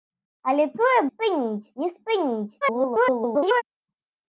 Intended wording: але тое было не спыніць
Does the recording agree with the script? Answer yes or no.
no